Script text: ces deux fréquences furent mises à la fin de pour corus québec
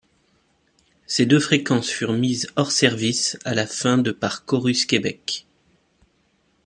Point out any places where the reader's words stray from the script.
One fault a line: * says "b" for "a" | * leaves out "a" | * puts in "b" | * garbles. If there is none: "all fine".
* puts in "hors service"
* says "par" for "pour"